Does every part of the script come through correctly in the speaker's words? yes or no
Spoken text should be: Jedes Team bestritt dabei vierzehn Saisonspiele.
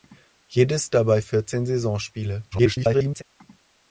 no